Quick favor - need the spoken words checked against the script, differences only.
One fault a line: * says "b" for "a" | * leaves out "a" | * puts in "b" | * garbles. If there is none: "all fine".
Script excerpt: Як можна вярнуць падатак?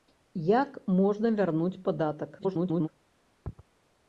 * garbles